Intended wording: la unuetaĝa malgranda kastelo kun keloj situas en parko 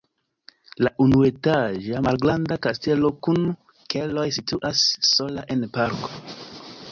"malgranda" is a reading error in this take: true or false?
false